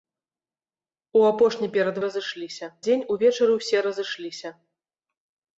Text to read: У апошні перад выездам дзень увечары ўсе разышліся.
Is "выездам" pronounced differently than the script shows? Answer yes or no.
yes